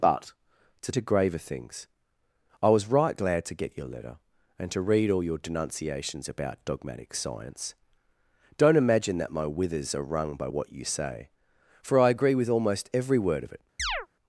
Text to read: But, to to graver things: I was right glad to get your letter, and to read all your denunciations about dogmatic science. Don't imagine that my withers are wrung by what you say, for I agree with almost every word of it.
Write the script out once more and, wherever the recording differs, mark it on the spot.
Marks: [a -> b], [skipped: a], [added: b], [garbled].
But, to to graver things: I was right glad to get your letter, and to read all your denunciations about dogmatic science. Don't imagine that my withers are wrung by what you say, for I agree with almost every word of it.